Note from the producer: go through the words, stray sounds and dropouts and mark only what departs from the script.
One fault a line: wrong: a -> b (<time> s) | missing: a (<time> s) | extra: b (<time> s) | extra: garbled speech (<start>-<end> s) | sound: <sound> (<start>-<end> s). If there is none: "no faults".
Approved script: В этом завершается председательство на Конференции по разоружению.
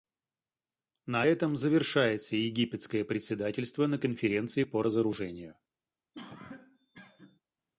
wrong: В -> На (1.1 s)
extra: египетское (2.4 s)
sound: cough (6.1-7.4 s)